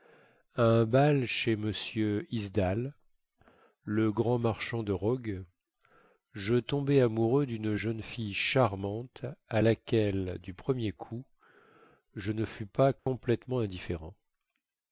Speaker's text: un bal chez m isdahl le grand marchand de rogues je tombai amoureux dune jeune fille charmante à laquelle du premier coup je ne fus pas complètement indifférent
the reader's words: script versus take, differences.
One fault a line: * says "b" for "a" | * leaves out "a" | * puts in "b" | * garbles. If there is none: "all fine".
all fine